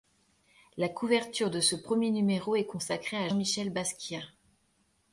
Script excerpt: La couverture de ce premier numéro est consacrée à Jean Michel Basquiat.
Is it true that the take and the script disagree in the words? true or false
true